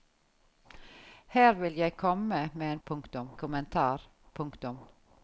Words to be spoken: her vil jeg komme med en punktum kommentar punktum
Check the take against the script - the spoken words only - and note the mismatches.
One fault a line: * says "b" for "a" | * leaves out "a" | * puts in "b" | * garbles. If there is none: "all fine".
all fine